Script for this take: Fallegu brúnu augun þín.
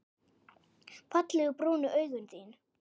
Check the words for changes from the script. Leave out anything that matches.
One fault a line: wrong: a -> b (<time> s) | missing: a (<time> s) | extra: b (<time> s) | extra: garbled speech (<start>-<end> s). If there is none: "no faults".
no faults